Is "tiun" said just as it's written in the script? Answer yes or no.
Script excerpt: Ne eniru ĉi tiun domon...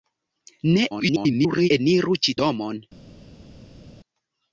no